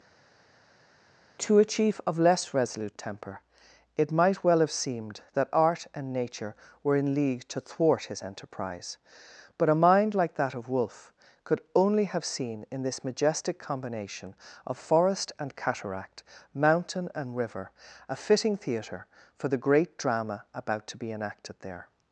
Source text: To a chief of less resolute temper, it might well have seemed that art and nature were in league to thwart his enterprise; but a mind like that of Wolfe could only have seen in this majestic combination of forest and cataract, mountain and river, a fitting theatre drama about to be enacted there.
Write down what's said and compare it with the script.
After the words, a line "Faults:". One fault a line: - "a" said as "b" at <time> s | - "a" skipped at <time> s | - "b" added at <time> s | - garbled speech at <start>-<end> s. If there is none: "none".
To a chief of less resolute temper, it might well have seemed that art and nature were in league to thwart his enterprise; but a mind like that of Wolfe could only have seen in this majestic combination of forest and cataract, mountain and river, a fitting theatre for the great drama about to be enacted there.
Faults:
- "for the great" added at 19.4 s